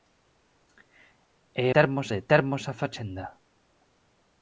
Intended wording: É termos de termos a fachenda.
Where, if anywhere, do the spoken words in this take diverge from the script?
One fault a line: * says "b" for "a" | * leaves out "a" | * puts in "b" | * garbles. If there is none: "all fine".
all fine